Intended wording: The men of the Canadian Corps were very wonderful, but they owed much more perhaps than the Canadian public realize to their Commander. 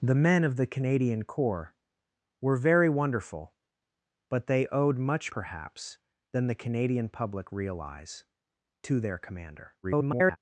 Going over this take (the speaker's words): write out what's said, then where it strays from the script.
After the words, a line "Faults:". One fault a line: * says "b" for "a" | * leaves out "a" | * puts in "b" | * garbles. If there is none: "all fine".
The men of the Canadian Corps were very wonderful, but they owed much perhaps than the Canadian public realize to their Commander. [garbled]
Faults:
* leaves out "more"
* garbles